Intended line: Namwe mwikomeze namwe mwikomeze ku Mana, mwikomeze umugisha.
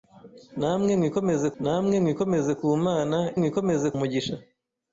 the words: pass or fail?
pass